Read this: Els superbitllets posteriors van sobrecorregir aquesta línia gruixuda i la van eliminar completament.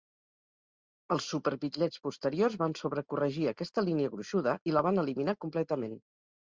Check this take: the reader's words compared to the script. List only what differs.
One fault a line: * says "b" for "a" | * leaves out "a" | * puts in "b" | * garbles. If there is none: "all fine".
all fine